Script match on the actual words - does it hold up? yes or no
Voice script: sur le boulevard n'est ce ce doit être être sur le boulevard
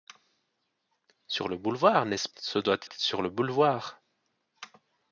yes